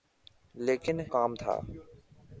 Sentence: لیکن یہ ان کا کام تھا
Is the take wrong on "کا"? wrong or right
wrong